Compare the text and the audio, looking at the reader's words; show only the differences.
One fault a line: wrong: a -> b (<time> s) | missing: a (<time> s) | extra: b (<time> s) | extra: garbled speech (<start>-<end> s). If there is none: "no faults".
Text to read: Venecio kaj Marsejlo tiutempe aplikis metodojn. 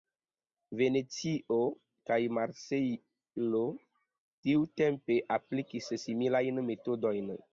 extra: similajn (6.1 s)